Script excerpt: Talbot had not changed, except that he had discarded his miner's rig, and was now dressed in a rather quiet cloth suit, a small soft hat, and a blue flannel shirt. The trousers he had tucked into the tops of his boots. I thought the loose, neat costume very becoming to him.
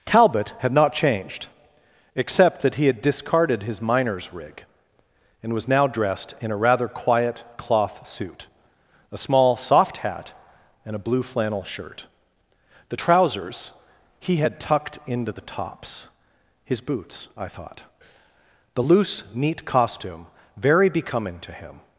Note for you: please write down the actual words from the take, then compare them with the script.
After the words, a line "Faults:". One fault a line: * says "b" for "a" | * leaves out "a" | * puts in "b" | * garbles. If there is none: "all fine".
Talbot had not changed, except that he had discarded his miner's rig, and was now dressed in a rather quiet cloth suit, a small soft hat, and a blue flannel shirt. The trousers he had tucked into the tops his boots. I thought the loose, neat costume very becoming to him.
Faults:
* leaves out "of"